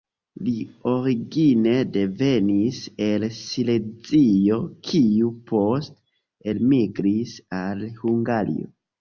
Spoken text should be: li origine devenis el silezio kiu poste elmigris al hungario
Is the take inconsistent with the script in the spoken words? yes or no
no